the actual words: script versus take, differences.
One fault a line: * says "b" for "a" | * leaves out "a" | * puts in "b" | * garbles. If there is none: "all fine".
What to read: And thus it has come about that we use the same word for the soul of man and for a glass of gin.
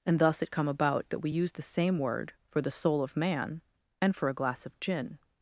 * leaves out "has"